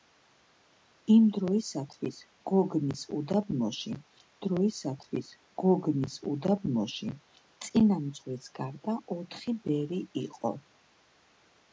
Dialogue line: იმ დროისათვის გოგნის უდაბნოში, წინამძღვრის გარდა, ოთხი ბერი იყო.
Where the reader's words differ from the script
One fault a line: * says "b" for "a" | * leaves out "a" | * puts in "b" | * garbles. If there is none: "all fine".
* puts in "დროისათვის გოგნის უდაბნოში"